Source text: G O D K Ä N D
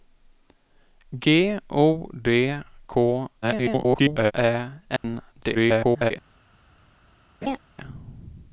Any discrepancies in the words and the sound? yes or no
yes